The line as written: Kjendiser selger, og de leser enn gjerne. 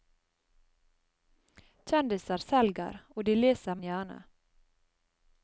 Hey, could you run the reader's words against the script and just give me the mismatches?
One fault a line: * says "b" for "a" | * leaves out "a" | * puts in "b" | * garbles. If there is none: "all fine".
all fine